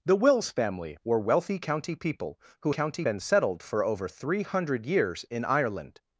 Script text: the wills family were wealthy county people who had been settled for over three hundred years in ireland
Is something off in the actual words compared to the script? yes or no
yes